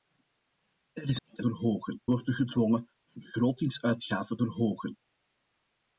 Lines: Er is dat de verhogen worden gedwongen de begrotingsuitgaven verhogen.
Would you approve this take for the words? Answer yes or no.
yes